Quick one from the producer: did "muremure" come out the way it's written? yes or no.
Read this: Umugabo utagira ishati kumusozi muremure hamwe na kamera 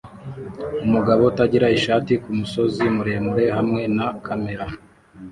yes